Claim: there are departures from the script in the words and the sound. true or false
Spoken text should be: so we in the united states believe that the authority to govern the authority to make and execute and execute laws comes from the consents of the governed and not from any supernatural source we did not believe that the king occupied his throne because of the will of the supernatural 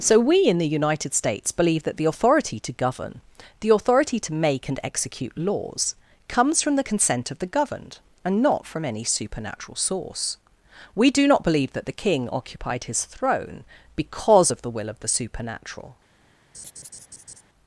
true